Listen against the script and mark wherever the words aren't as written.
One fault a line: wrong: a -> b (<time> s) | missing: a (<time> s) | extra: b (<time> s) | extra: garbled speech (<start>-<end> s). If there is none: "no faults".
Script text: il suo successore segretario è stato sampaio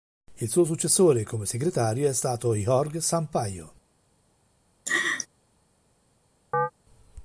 extra: come (1.2 s)
extra: jorge (2.5 s)